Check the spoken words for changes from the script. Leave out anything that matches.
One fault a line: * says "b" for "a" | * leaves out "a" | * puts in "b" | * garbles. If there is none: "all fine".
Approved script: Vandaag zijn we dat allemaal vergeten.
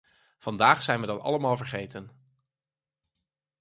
all fine